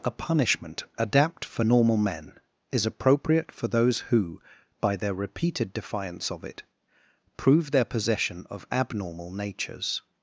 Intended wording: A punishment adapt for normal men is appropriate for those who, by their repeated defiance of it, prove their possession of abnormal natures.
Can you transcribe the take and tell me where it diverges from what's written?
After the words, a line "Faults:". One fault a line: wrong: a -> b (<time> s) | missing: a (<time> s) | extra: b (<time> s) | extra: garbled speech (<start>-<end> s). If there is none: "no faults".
A punishment adapt for normal men is appropriate for those who, by their repeated defiance of it, prove their possession of abnormal natures.
Faults:
no faults